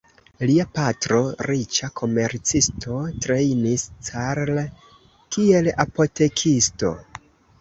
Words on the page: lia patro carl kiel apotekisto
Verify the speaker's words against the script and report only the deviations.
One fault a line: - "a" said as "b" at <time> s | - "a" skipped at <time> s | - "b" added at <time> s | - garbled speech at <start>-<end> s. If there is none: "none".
- "riĉa komercisto trejnis" added at 1.5 s